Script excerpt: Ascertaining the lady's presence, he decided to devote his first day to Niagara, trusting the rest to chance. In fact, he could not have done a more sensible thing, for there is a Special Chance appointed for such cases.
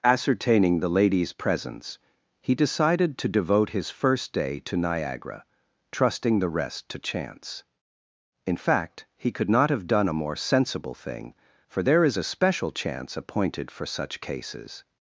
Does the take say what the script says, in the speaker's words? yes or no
yes